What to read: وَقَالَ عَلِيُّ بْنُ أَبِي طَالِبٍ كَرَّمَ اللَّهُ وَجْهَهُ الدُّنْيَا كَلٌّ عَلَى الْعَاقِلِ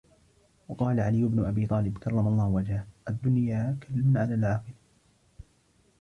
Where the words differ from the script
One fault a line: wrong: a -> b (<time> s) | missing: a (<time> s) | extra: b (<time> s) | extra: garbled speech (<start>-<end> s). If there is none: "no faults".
no faults